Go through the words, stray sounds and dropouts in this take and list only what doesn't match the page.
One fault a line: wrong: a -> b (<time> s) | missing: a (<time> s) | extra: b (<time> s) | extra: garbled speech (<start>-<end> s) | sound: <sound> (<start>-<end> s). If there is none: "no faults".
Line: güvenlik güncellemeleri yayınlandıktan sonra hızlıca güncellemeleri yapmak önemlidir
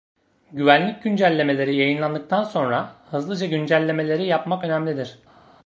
no faults